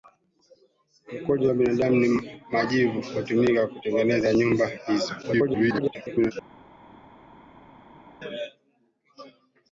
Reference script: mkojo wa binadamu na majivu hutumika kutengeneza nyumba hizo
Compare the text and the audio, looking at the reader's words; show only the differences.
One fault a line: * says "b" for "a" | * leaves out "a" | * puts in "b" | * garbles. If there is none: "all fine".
* garbles